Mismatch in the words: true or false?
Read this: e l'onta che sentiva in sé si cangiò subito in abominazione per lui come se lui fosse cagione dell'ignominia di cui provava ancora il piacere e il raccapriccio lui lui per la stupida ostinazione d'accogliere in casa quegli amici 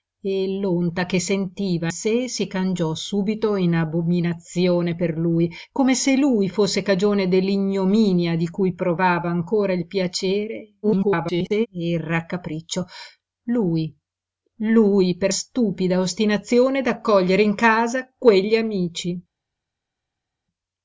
true